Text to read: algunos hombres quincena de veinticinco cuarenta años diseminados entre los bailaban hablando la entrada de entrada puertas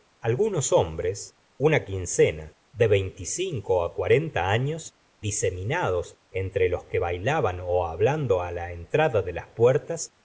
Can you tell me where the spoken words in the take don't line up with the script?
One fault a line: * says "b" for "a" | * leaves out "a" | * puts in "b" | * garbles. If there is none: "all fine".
* puts in "una"
* puts in "que"
* says "las" for "entrada"